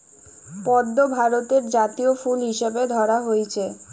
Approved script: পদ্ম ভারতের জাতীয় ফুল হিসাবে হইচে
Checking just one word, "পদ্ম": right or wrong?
right